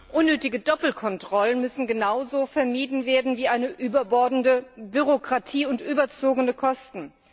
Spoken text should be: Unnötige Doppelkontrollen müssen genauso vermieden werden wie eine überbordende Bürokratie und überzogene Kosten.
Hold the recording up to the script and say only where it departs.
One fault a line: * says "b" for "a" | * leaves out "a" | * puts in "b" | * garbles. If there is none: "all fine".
all fine